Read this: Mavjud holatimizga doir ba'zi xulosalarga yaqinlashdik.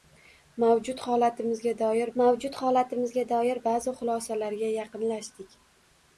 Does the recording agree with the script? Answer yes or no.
no